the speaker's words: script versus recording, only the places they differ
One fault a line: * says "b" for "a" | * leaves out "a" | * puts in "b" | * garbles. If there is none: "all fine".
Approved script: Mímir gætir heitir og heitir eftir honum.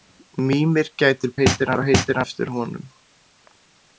all fine